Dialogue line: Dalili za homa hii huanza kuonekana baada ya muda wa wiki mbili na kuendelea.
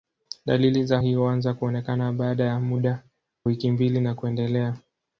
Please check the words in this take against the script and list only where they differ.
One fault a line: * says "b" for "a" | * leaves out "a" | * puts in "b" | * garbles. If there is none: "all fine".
* leaves out "homa"
* leaves out "wa"